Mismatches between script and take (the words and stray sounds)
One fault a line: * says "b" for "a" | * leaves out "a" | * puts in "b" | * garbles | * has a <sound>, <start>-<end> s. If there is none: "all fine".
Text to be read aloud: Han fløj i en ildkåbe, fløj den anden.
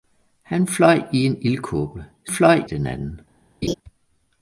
* has a laugh, 3.6-3.7 s